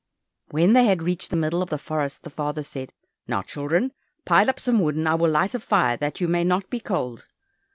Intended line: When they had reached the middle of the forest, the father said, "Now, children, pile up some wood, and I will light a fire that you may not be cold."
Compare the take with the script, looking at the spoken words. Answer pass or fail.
pass